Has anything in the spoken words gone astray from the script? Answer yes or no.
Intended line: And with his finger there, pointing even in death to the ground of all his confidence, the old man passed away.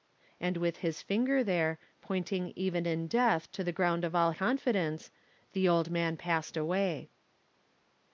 yes